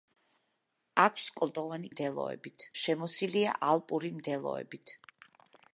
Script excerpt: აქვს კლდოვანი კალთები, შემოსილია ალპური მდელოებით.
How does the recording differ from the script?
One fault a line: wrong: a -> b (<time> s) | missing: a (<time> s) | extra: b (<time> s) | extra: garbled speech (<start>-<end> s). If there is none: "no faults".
wrong: კალთები -> მდელოებით (1.9 s)